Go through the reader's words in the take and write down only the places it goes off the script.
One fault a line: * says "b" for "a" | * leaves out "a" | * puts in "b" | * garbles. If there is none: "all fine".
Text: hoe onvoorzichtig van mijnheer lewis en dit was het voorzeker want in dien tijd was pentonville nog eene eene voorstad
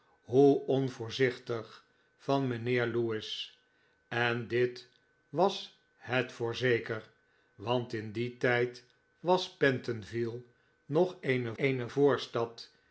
all fine